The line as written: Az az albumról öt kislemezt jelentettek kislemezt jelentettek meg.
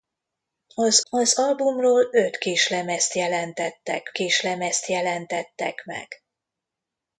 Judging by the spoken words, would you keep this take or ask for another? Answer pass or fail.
pass